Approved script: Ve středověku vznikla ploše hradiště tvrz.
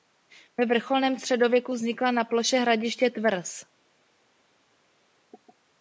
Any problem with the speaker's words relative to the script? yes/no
yes